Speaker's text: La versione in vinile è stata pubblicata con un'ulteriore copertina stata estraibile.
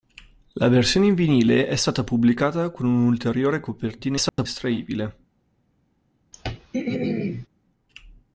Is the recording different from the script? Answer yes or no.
no